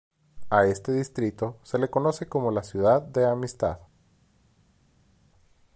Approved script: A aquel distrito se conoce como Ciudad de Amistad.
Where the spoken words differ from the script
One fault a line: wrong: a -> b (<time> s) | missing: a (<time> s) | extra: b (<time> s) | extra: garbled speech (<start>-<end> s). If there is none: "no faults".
wrong: aquel -> este (0.7 s)
extra: le (1.8 s)
extra: la (2.5 s)